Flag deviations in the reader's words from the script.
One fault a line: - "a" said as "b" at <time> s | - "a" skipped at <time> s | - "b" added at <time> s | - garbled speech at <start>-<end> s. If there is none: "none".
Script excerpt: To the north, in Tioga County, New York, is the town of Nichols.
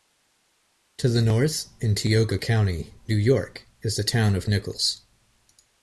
none